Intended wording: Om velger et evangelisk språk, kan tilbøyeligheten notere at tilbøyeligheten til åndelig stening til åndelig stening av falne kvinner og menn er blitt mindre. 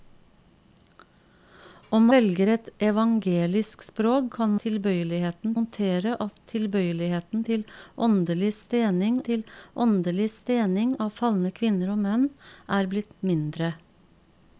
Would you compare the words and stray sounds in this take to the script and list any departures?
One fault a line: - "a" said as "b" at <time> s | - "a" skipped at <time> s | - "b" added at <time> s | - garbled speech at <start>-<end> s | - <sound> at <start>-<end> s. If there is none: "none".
none